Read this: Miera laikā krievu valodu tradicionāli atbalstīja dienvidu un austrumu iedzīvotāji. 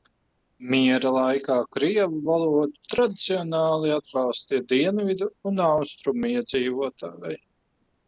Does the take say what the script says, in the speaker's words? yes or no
yes